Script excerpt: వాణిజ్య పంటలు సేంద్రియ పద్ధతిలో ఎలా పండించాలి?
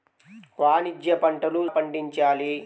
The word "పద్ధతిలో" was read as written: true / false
false